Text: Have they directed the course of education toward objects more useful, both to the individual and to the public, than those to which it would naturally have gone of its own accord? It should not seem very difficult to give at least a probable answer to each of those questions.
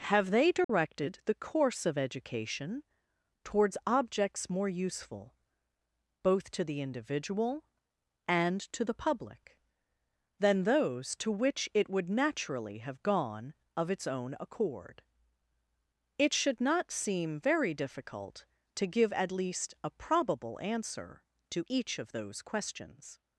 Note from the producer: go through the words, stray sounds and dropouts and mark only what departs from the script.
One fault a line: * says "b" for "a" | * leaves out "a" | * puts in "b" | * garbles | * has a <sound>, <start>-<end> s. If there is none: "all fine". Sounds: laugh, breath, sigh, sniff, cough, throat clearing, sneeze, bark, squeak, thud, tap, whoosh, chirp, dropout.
* has a dropout, 0.6-0.7 s
* says "towards" for "toward"